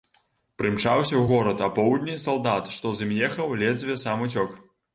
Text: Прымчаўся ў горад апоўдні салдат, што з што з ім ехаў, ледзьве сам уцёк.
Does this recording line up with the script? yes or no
no